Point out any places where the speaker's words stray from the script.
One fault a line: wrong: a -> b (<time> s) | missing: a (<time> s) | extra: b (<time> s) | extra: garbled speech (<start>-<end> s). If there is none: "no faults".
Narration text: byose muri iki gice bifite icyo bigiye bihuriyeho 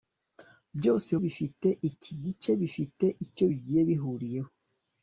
wrong: muri -> bifite (1.2 s)